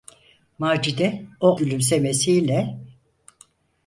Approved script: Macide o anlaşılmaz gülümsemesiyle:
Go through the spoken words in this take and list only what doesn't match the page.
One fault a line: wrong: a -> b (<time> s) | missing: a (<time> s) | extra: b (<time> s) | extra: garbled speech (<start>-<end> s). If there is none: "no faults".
missing: anlaşılmaz (1.6 s)